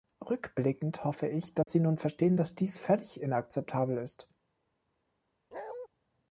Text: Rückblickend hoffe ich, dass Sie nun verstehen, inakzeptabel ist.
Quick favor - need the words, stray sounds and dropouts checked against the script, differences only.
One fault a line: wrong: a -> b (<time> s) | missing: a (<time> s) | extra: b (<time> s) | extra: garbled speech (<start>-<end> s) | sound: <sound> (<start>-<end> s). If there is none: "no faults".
sound: dropout (1.6-1.7 s)
extra: dass dies völlig (2.3 s)
sound: bark (5.5-5.9 s)